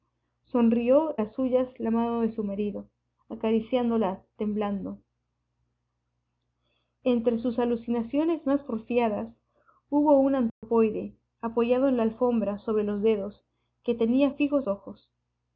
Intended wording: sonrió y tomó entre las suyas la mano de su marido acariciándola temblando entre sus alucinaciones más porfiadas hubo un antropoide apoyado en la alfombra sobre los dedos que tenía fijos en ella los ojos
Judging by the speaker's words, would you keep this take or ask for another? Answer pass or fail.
fail